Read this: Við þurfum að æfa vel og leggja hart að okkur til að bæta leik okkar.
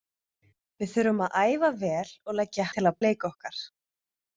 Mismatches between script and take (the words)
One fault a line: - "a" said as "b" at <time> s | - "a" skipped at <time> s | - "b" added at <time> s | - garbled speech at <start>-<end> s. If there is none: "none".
- "hart að okkur" skipped at 2.7 s
- "bæta" skipped at 3.0 s